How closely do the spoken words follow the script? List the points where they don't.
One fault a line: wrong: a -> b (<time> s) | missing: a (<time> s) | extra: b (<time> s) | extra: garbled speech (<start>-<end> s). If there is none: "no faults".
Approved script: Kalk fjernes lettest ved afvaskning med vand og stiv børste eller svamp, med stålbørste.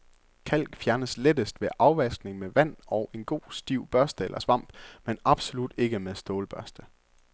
extra: en god (3.1 s)
extra: men absolut ikke (5.0 s)